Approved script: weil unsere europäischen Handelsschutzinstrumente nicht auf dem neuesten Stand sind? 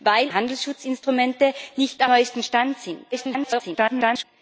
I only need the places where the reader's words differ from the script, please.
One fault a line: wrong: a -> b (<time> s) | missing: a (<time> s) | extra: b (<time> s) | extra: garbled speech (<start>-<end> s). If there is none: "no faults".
missing: unsere europäischen (0.3 s)
missing: auf dem (2.0 s)
extra: garbled speech (3.1-4.2 s)